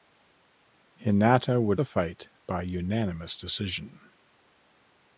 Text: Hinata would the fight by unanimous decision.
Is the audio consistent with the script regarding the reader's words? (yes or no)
yes